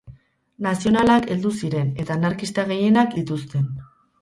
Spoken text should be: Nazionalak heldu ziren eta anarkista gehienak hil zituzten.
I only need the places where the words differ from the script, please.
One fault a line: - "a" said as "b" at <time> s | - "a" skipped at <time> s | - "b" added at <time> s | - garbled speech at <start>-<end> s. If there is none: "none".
- "hil" skipped at 3.2 s